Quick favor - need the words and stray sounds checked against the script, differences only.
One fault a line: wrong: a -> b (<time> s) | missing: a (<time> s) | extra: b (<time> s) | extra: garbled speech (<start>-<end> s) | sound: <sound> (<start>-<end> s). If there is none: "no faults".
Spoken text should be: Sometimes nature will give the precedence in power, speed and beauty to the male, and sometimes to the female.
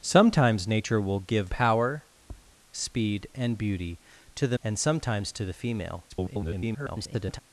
missing: the precedence in (1.5 s)
sound: tap (2.2-2.6 s)
missing: male (4.6 s)
extra: garbled speech (6.1-7.4 s)